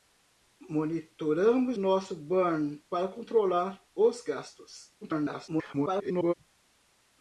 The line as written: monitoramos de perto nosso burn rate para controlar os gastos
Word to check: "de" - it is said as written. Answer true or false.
false